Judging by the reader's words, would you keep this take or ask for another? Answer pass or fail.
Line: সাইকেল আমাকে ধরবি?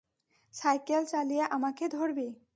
fail